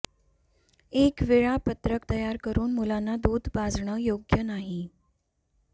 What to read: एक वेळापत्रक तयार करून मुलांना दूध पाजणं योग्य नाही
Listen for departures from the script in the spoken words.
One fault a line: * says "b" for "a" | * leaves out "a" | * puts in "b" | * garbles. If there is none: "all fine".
all fine